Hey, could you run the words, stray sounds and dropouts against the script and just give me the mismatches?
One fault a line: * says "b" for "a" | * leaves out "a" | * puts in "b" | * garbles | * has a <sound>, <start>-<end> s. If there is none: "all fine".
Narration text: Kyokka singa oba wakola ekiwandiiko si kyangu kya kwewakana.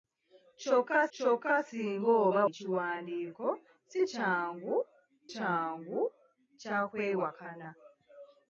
* puts in "kyokka"
* leaves out "wakola"
* puts in "kyangu"